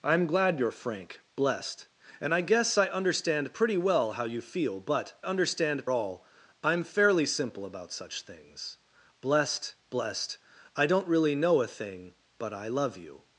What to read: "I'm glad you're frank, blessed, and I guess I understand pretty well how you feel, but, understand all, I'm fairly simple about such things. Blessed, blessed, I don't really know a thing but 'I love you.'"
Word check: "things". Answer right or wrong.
right